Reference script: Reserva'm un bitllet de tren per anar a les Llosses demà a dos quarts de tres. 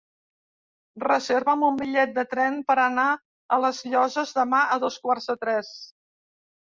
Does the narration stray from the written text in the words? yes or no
no